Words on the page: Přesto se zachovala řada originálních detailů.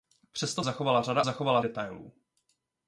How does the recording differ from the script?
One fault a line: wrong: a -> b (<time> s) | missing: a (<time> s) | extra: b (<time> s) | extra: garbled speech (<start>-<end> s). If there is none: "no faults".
missing: se (0.6 s)
wrong: originálních -> zachovala (1.2 s)